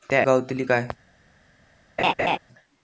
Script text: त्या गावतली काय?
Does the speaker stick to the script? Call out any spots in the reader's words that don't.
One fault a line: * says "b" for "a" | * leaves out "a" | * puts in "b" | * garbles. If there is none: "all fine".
all fine